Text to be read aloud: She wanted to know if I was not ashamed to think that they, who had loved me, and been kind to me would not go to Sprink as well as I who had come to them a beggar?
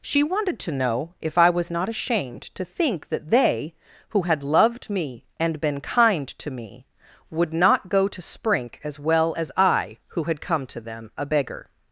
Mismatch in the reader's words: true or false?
false